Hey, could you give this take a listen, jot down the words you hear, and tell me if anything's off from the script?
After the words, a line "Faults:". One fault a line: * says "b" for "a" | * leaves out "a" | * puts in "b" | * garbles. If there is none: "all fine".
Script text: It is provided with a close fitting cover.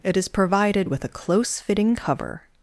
It is provided with a close fitting cover.
Faults:
all fine